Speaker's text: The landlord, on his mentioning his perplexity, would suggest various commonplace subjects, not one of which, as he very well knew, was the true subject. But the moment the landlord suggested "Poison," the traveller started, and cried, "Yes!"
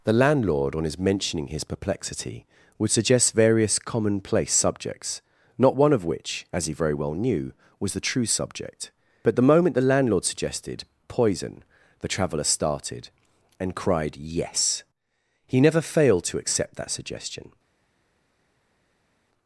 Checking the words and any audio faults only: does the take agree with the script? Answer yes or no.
no